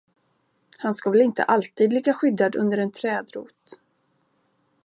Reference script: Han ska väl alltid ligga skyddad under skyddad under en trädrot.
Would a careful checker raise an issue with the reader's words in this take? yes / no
yes